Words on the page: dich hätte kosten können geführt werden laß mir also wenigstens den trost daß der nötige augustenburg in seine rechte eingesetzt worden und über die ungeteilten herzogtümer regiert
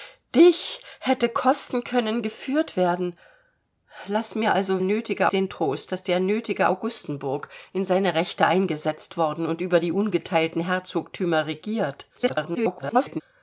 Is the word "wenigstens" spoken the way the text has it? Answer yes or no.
no